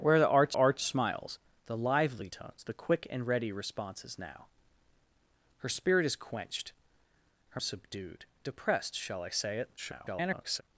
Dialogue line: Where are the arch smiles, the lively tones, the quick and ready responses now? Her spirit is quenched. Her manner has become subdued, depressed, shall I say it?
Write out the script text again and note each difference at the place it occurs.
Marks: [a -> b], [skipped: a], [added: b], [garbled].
Where are the arch [added: arch] smiles, the lively tones, the quick and ready responses now? Her spirit is quenched. Her [skipped: manner has become] subdued, depressed, shall I say it? [garbled]